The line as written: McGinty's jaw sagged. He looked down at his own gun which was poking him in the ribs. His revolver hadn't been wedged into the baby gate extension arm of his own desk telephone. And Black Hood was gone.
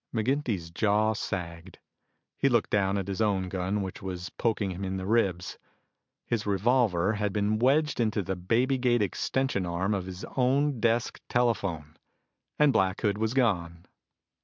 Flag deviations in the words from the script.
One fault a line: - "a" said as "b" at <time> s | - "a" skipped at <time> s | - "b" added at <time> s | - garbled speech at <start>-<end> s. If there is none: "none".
- "hadn't" said as "had" at 7.2 s